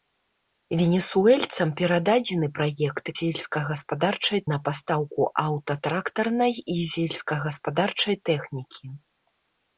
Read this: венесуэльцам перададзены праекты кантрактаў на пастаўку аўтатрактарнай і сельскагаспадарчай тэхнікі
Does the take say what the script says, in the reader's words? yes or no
no